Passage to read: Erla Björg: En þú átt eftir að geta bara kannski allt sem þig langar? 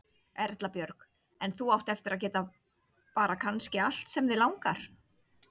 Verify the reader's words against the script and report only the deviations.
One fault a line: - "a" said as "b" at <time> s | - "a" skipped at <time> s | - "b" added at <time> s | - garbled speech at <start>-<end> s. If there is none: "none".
none